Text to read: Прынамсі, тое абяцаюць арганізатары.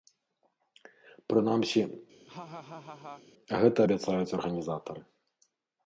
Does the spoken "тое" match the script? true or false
false